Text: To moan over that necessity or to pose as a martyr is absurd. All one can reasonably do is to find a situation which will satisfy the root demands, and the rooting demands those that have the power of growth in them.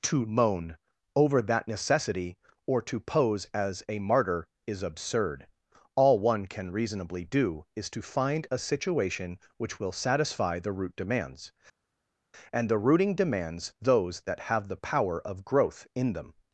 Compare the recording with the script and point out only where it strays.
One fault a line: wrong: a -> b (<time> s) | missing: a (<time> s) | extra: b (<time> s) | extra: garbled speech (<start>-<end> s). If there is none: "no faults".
no faults